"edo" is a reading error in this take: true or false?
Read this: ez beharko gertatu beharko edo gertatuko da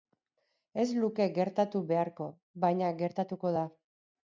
true